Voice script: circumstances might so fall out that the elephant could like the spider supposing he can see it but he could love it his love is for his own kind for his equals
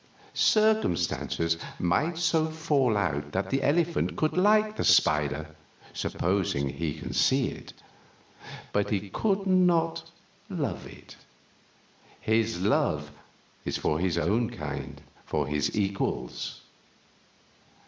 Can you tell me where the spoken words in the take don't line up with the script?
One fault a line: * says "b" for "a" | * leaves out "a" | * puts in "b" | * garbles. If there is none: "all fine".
* puts in "not"